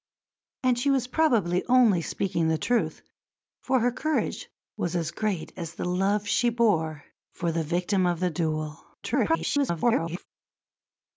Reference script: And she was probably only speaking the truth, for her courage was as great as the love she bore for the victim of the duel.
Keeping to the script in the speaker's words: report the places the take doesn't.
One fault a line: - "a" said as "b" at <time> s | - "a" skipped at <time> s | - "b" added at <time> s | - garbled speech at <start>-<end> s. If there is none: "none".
- garbled speech at 9.0-10.3 s